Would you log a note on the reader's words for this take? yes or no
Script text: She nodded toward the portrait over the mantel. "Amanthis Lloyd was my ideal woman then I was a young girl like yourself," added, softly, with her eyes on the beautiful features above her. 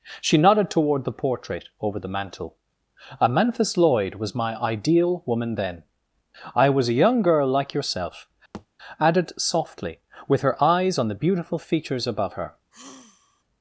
no